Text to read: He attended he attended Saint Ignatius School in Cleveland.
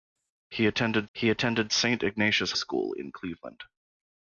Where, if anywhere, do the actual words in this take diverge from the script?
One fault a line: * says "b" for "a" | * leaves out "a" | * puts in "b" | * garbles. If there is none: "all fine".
all fine